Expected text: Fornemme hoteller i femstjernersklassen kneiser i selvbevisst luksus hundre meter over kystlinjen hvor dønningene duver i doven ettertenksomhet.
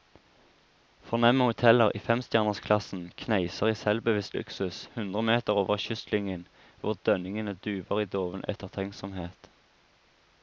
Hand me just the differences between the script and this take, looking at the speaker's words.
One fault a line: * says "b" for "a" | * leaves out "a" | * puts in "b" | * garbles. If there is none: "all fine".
all fine